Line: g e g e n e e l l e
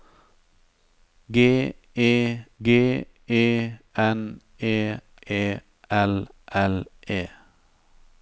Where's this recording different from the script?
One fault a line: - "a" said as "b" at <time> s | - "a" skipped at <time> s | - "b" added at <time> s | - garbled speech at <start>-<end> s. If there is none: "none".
none